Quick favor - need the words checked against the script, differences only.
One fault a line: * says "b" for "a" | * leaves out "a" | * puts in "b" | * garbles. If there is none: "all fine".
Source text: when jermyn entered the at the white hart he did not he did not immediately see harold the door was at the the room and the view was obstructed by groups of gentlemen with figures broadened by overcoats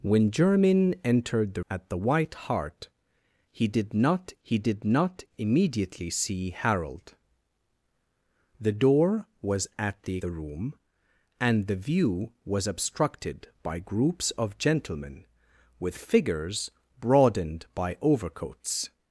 all fine